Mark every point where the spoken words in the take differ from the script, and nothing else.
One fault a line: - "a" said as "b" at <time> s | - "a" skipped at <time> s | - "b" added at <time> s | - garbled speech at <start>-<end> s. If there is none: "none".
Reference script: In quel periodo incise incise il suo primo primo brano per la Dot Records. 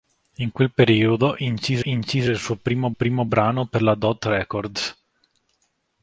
none